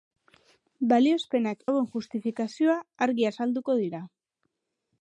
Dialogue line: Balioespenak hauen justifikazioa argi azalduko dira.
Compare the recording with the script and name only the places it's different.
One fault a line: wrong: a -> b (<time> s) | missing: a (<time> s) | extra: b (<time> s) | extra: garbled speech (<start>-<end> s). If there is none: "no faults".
no faults